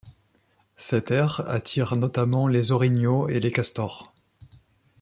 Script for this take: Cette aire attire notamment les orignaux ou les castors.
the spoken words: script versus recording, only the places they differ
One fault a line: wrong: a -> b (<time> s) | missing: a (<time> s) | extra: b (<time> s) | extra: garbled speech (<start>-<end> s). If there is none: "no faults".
wrong: ou -> et (3.3 s)